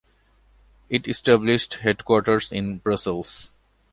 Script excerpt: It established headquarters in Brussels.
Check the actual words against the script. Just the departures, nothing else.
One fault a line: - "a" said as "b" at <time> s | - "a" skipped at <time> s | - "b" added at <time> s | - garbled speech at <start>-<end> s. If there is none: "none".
none